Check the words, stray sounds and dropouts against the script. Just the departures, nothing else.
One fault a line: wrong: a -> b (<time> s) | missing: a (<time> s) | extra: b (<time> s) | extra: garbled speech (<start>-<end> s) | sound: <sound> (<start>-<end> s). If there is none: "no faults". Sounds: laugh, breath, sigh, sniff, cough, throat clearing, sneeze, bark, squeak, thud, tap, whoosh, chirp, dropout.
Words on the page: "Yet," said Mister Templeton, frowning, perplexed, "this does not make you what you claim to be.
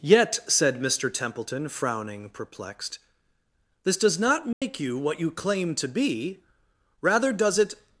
sound: dropout (4.5-4.6 s)
extra: Rather does it (7.0 s)